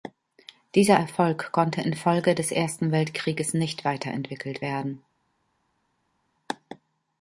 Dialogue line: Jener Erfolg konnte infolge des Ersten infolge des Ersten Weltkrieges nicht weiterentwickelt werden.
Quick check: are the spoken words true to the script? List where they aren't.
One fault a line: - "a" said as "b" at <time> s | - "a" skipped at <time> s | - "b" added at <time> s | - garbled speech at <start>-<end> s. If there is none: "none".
- "Jener" said as "Dieser" at 0.7 s
- "infolge des Ersten" skipped at 2.9 s